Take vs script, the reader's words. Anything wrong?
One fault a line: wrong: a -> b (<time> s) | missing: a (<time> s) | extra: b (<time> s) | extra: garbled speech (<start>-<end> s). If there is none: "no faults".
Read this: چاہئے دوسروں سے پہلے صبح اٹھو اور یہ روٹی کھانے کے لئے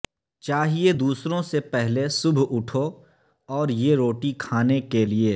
no faults